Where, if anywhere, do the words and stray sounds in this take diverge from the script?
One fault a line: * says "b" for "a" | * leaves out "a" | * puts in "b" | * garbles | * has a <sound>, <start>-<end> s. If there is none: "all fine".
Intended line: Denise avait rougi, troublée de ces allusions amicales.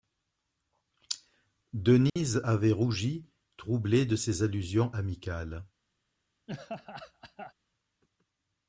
* has a dropout, 2.1-2.2 s
* has a laugh, 6.5-7.5 s